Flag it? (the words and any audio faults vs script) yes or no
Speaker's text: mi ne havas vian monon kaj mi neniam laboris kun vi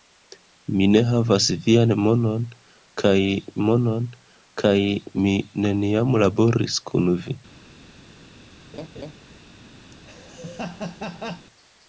yes